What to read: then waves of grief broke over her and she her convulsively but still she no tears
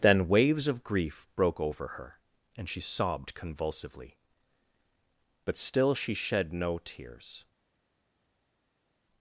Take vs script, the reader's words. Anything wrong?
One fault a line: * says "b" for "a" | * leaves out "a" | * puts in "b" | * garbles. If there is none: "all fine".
* says "sobbed" for "her"
* puts in "shed"